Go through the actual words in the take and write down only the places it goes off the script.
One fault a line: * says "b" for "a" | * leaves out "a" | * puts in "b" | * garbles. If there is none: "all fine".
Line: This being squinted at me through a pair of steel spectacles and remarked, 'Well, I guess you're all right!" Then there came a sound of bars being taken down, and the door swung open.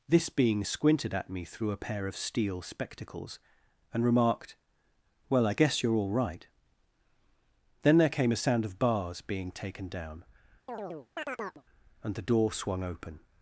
all fine